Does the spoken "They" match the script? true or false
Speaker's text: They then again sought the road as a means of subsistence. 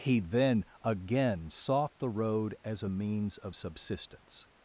false